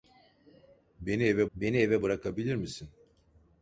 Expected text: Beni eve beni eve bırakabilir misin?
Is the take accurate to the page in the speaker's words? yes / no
yes